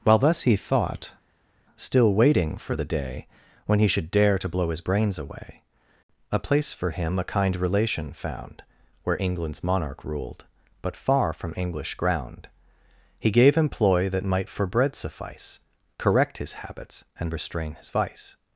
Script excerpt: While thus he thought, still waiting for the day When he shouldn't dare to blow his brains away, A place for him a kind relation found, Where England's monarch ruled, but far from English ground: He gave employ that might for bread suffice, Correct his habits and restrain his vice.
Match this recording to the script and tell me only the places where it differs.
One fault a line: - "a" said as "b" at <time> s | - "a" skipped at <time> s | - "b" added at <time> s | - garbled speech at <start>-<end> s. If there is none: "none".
- "shouldn't" said as "should" at 3.9 s